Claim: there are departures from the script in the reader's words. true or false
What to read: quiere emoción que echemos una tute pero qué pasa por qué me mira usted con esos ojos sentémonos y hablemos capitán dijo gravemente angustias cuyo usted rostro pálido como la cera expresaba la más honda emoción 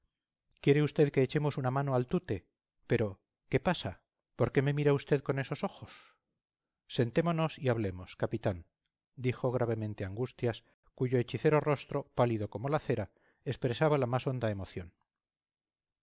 true